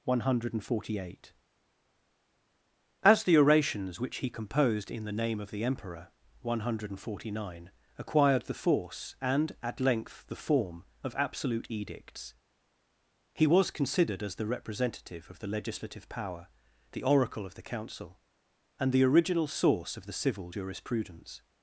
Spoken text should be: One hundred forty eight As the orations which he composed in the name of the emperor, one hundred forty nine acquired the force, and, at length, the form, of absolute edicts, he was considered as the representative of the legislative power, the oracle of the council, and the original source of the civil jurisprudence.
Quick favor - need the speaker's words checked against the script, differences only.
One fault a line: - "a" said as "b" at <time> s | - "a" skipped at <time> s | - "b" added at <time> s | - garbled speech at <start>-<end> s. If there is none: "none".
none